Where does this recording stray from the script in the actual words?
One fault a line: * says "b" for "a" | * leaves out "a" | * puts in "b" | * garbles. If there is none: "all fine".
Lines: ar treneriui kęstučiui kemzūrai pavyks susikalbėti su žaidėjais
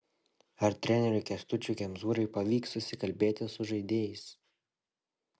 all fine